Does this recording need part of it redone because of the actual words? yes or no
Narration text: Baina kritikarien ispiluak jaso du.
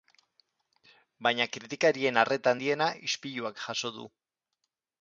yes